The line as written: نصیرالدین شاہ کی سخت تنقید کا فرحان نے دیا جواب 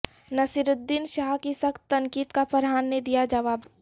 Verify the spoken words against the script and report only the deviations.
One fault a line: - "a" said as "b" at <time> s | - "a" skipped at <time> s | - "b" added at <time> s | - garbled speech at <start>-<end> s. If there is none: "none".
none